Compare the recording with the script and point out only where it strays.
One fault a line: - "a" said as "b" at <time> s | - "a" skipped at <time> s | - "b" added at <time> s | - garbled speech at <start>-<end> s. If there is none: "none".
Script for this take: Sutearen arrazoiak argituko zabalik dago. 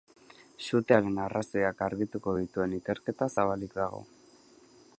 - "dituen ikerketa" added at 2.4 s